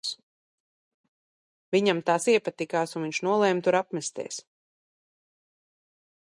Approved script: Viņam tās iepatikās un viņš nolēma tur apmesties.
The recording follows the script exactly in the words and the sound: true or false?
true